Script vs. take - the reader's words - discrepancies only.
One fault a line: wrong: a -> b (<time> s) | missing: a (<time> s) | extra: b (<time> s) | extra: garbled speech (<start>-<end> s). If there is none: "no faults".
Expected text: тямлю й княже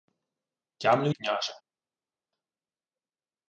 no faults